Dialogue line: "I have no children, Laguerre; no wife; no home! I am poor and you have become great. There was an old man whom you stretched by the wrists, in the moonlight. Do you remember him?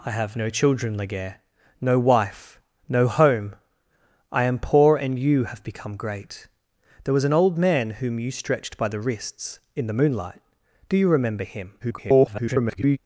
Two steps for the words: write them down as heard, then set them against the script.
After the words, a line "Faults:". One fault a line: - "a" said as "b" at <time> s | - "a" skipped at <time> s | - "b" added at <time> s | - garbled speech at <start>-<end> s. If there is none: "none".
"I have no children, Laguerre; no wife; no home! I am poor and you have become great. There was an old man whom you stretched by the wrists, in the moonlight. Do you remember him? [garbled]
Faults:
- garbled speech at 11.8-13.0 s